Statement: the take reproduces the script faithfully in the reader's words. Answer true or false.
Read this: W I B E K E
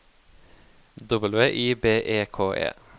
true